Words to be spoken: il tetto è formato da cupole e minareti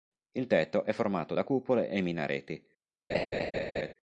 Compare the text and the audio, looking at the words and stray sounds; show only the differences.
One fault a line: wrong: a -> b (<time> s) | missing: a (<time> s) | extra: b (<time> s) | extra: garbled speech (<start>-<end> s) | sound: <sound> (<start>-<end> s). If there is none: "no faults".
sound: laugh (3.1-3.9 s)